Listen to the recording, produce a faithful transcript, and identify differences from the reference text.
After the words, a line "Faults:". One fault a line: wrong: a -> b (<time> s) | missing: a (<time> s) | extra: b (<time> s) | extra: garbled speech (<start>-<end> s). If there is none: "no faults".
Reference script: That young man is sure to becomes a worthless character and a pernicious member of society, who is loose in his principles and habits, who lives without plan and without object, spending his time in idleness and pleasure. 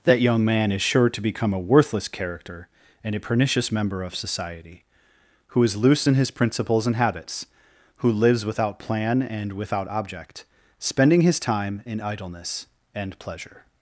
That young man is sure to become a worthless character and a pernicious member of society, who is loose in his principles and habits, who lives without plan and without object, spending his time in idleness and pleasure.
Faults:
wrong: becomes -> become (1.2 s)